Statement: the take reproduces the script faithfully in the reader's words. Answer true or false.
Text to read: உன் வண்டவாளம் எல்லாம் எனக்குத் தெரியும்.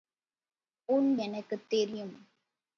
false